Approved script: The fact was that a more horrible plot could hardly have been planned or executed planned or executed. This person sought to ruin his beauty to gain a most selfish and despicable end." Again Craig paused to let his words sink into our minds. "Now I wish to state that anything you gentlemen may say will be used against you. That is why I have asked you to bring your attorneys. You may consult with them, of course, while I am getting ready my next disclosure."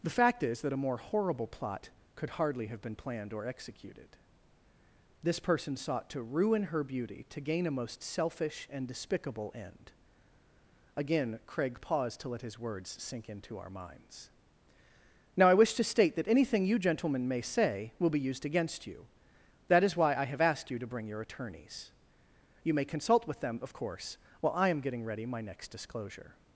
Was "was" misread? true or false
true